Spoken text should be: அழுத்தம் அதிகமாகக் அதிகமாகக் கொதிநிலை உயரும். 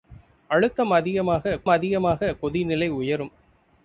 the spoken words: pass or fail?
pass